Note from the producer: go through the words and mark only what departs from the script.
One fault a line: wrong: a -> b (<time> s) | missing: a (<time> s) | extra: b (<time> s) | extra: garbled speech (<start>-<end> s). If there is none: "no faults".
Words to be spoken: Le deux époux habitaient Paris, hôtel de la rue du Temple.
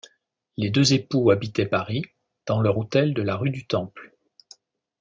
wrong: Le -> Les (0.6 s)
extra: dans leur (2.5 s)